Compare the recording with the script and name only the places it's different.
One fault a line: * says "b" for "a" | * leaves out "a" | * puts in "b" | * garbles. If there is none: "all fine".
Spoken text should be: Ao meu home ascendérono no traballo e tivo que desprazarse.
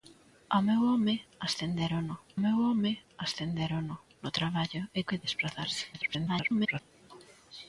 * puts in "meu home ascendérono"
* leaves out "tivo"
* garbles